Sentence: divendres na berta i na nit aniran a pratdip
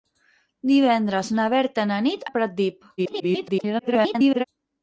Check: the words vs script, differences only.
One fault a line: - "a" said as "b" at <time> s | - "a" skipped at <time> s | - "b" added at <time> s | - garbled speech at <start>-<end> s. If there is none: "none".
- "aniran" skipped at 2.2 s
- garbled speech at 3.0-4.4 s